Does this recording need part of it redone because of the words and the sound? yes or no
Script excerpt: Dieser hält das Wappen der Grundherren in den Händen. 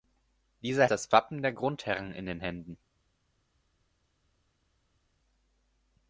yes